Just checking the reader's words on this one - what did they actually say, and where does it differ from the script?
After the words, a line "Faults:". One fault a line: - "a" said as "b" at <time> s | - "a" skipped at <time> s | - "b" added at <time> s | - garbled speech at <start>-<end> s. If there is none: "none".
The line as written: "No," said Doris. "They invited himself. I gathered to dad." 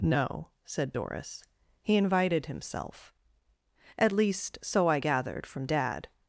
"No," said Doris. "He invited himself. At least, so I gathered from dad."
Faults:
- "They" said as "He" at 1.8 s
- "At least so" added at 4.0 s
- "to" said as "from" at 5.5 s